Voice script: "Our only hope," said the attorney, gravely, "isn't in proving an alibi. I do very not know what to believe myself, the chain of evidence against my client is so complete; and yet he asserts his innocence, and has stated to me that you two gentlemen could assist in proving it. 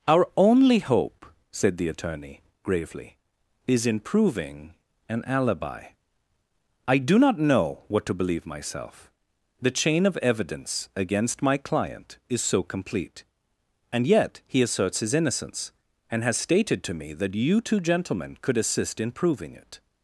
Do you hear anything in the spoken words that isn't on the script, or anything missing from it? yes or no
yes